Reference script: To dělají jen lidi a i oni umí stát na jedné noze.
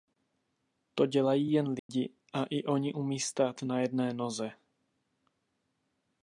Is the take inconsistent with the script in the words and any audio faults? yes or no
yes